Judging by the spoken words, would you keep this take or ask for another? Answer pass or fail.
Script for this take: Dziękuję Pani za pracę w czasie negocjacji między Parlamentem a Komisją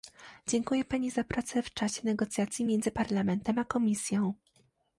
pass